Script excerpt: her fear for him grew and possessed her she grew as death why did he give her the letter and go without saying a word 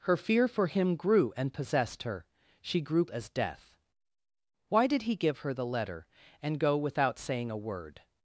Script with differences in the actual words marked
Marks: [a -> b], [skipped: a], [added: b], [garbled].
her fear for him grew and possessed her she grew as death why did he give her the letter and go without saying a word